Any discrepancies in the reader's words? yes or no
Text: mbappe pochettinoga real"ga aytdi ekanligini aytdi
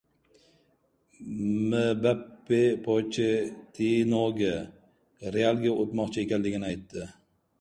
yes